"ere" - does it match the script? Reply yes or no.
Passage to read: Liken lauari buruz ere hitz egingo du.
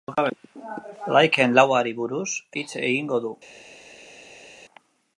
no